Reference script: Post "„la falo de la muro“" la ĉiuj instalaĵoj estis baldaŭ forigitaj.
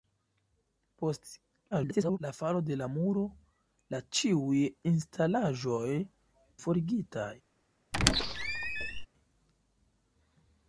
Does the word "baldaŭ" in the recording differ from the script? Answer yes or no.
yes